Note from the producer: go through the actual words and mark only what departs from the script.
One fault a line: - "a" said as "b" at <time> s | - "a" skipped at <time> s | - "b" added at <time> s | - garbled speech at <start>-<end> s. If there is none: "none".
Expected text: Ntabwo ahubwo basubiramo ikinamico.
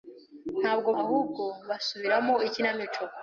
none